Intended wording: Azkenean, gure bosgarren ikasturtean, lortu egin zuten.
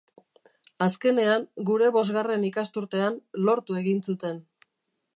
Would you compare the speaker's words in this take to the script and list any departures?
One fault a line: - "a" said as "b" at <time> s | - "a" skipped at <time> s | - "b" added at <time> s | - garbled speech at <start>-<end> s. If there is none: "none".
none